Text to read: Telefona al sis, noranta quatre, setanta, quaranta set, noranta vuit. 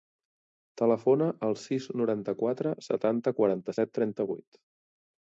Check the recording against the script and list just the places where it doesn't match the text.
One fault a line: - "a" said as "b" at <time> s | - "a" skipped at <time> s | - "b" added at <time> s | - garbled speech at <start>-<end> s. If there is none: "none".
- "noranta" said as "trenta" at 4.0 s